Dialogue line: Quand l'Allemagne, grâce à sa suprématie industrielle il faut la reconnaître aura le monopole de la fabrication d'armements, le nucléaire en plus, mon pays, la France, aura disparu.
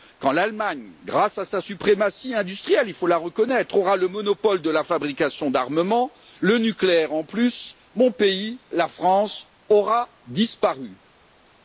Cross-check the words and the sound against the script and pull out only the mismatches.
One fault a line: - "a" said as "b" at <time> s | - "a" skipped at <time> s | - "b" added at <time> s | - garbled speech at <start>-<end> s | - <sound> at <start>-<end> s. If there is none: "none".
none